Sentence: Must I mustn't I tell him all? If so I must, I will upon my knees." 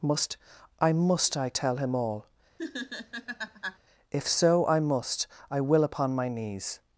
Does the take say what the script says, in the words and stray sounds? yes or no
no